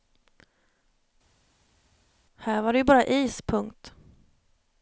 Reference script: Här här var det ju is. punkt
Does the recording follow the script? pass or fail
fail